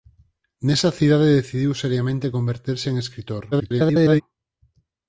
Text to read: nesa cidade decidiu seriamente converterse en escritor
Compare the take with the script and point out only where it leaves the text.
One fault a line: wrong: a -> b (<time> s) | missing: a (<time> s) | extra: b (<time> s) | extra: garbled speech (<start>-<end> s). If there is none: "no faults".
extra: garbled speech (3.5-4.2 s)